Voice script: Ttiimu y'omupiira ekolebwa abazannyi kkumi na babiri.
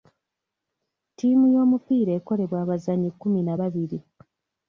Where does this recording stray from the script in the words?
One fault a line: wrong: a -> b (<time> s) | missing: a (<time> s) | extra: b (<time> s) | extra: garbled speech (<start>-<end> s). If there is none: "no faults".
no faults